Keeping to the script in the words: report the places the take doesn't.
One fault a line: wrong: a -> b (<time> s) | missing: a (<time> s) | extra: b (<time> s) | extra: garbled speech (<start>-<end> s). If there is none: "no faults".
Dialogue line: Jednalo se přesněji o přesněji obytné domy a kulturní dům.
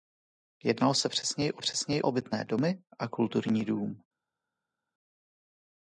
no faults